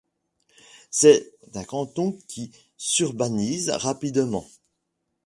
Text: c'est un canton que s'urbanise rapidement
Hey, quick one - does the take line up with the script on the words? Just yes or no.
no